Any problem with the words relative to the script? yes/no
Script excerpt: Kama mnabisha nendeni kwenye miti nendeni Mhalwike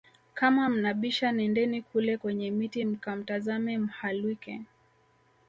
yes